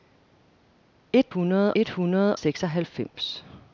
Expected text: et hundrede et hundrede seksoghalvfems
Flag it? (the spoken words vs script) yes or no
no